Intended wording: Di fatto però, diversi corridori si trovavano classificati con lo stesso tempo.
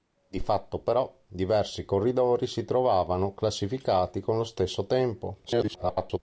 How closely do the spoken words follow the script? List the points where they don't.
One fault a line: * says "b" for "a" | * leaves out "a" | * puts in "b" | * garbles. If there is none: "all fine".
* garbles